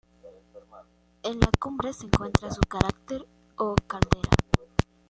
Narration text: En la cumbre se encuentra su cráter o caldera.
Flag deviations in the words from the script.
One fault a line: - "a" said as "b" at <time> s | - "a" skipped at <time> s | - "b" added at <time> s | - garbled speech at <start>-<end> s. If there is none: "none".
none